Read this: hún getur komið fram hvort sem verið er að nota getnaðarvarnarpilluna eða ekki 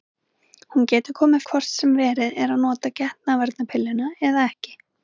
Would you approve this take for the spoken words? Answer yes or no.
no